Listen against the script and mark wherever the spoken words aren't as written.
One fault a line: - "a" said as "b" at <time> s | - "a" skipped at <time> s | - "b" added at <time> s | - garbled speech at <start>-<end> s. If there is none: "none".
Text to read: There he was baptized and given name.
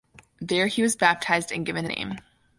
none